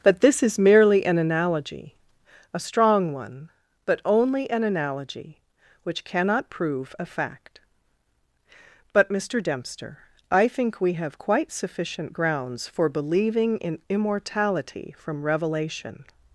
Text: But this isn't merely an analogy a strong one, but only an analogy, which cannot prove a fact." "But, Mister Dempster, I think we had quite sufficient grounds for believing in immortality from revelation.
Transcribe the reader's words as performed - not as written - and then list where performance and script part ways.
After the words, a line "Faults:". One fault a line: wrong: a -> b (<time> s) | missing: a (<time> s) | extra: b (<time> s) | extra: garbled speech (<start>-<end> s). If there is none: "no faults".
But this is merely an analogy a strong one, but only an analogy, which cannot prove a fact." "But, Mister Dempster, I think we have quite sufficient grounds for believing in immortality from revelation.
Faults:
wrong: isn't -> is (0.4 s)
wrong: had -> have (10.9 s)